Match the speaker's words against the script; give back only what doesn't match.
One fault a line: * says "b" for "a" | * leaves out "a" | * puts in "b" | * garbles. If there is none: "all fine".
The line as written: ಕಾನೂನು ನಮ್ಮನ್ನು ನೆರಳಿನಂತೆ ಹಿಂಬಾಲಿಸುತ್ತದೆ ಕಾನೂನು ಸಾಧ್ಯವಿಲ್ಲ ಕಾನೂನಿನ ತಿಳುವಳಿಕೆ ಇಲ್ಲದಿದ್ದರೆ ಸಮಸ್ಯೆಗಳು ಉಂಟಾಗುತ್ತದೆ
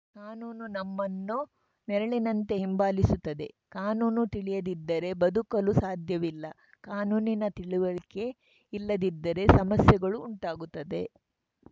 * puts in "ತಿಳಿಯದಿದ್ದರೆ ಬದುಕಲು"